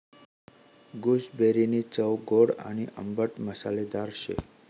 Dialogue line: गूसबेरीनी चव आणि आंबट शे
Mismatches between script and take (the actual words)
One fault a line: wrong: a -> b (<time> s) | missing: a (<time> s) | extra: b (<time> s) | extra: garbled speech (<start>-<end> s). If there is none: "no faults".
extra: गोड (2.3 s)
extra: मसालेदार (3.4 s)